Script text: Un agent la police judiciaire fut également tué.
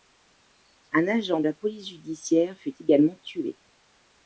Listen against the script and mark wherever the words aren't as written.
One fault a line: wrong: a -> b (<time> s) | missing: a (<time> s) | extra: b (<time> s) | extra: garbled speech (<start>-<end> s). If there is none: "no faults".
no faults